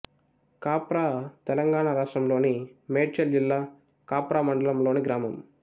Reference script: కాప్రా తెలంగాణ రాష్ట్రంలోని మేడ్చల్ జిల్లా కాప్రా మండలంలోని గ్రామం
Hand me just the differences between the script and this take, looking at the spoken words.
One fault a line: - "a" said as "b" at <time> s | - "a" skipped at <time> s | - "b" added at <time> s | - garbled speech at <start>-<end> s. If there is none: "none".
none